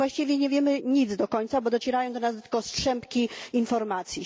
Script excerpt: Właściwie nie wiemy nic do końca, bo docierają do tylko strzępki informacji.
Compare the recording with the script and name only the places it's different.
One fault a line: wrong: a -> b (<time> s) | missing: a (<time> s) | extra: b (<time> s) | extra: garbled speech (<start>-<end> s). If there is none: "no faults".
extra: nas (2.2 s)